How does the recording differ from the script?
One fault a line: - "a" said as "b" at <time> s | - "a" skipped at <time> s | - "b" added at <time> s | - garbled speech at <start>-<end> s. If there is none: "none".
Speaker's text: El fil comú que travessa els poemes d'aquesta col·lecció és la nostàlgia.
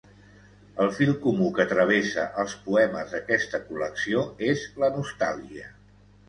none